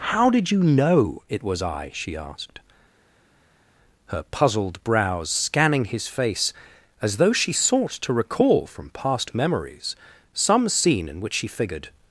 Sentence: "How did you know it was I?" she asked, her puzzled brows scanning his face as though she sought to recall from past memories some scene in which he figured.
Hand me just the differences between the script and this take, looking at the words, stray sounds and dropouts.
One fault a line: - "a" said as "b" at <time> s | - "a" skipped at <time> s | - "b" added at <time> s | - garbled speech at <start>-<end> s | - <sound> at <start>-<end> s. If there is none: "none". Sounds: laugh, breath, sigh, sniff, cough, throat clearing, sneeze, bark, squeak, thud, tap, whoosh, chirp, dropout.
- "he" said as "she" at 11.3 s